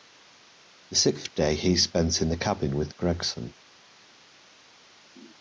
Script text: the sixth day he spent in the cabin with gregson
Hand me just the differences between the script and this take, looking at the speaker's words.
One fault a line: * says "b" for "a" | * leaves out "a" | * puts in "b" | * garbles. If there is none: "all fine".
all fine